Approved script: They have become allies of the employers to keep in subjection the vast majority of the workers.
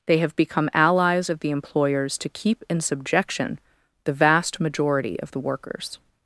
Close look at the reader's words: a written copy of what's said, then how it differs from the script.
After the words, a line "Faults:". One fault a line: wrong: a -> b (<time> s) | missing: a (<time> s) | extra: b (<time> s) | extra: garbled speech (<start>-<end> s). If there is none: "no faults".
They have become allies of the employers to keep in subjection the vast majority of the workers.
Faults:
no faults